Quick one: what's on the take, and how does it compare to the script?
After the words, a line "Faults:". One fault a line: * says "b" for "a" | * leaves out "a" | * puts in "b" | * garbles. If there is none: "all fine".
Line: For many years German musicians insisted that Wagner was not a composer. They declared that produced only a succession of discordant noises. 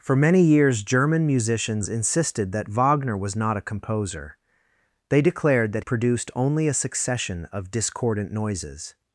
For many years German musicians insisted that Wagner was not a composer. They declared that produced only a succession of discordant noises.
Faults:
all fine